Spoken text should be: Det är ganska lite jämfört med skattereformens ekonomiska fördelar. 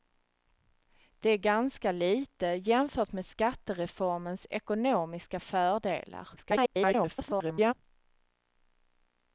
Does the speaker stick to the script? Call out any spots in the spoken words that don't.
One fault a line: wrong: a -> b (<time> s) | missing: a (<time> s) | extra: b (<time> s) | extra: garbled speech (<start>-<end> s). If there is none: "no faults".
extra: garbled speech (6.4-7.7 s)